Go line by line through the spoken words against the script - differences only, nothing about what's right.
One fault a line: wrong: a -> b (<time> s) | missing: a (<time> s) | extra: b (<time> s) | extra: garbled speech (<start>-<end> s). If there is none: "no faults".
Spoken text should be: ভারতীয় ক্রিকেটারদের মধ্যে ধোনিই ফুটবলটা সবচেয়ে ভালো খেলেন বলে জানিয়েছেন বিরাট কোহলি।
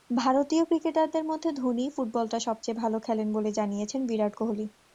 no faults